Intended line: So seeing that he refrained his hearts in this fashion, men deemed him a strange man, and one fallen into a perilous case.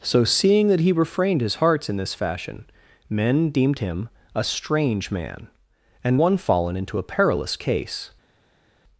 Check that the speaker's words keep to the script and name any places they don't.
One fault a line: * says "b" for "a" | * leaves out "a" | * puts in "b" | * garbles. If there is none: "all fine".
all fine